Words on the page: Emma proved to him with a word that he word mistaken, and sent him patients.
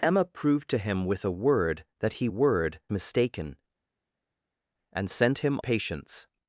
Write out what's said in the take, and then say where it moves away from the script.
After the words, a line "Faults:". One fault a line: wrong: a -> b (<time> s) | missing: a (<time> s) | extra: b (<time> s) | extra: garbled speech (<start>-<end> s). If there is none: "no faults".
Emma proved to him with a word that he word mistaken, and sent him patients.
Faults:
no faults